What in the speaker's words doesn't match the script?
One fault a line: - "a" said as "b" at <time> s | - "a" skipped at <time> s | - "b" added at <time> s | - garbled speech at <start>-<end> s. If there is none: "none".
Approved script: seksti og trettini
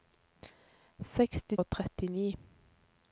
none